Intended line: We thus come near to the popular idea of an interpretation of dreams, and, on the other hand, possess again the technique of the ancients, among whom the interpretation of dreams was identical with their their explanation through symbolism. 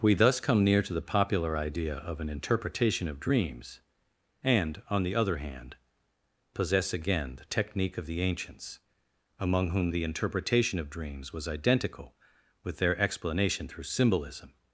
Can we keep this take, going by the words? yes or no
no